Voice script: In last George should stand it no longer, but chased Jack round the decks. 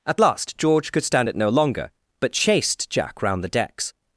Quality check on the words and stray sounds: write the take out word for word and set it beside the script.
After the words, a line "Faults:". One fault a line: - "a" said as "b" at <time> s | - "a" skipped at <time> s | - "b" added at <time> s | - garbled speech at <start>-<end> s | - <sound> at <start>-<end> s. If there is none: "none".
At last George could stand it no longer, but chased Jack round the decks.
Faults:
- "In" said as "At" at 0.1 s
- "should" said as "could" at 0.9 s